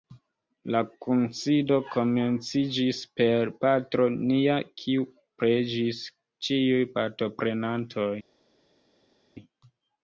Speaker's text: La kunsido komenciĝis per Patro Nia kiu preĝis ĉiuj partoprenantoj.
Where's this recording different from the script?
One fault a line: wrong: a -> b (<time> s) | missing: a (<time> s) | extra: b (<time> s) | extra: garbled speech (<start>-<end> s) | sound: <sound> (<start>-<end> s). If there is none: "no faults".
no faults